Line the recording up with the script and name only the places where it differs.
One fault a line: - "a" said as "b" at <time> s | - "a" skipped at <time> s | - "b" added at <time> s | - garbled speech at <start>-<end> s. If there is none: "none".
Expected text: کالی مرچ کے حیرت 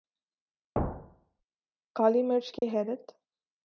none